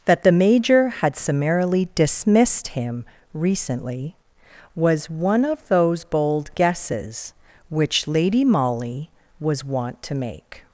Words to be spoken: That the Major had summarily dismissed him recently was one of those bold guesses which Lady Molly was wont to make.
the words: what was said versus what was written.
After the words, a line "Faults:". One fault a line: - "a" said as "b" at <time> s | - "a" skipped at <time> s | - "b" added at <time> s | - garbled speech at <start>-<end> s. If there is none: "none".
That the Major had summarily dismissed him recently was one of those bold guesses which Lady Molly was wont to make.
Faults:
none